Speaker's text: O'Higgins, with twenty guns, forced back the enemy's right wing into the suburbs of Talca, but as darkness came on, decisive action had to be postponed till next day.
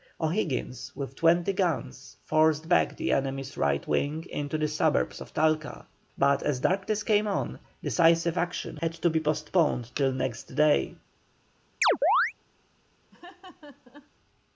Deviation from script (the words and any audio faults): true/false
true